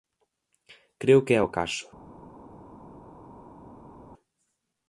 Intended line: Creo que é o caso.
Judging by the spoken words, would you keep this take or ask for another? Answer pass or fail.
pass